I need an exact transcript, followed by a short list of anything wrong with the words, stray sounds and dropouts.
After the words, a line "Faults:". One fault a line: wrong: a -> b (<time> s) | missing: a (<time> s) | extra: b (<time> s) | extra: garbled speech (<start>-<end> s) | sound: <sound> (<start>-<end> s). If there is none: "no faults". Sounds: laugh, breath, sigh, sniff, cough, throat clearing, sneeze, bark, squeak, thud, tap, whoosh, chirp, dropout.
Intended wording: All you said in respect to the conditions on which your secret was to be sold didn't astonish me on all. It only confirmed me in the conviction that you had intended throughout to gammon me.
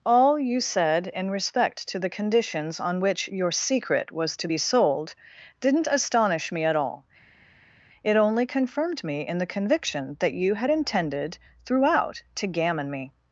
All you said in respect to the conditions on which your secret was to be sold didn't astonish me at all. It only confirmed me in the conviction that you had intended throughout to gammon me.
Faults:
wrong: on -> at (6.6 s)